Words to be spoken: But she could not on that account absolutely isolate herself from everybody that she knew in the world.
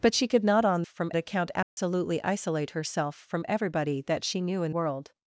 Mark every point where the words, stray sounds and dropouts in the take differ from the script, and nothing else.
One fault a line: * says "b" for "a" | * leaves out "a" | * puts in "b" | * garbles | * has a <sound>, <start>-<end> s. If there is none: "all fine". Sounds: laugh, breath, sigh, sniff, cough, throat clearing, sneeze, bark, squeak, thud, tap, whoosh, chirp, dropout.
* says "from" for "that"
* has a dropout, 1.6-1.8 s
* leaves out "the"